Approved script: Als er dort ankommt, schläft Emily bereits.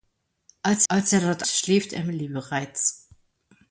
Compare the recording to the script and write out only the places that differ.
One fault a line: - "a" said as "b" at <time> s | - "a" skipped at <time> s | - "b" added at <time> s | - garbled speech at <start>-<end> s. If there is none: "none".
- "als" added at 0.9 s
- "ankommt" skipped at 1.4 s